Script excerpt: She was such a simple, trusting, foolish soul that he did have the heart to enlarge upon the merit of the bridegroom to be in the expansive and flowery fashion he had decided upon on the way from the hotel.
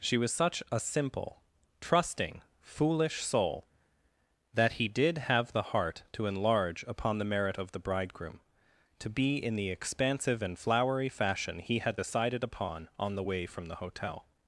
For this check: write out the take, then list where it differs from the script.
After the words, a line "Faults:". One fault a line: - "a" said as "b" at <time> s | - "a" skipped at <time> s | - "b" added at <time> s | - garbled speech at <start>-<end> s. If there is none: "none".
She was such a simple, trusting, foolish soul that he did have the heart to enlarge upon the merit of the bridegroom to be in the expansive and flowery fashion he had decided upon on the way from the hotel.
Faults:
none